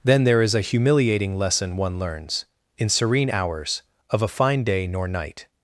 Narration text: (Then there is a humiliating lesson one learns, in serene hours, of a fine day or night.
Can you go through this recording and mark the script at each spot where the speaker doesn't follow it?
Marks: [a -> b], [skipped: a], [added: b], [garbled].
(Then there is a humiliating lesson one learns, in serene hours, of a fine day [or -> nor] night.